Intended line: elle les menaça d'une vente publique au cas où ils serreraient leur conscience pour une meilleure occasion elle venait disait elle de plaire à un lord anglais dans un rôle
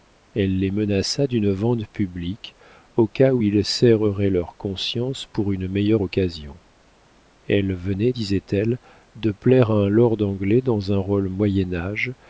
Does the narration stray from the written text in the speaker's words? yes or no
no